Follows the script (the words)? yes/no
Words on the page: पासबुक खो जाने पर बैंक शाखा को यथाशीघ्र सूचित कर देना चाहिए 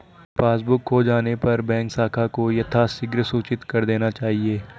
yes